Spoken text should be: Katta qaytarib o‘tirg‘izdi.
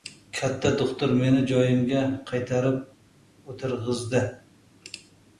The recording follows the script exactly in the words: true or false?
false